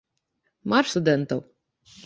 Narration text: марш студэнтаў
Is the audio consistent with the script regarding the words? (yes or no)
yes